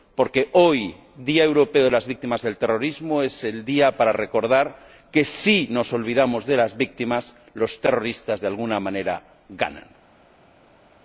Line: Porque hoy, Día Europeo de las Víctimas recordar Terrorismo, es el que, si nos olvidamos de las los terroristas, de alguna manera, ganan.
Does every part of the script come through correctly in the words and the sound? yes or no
no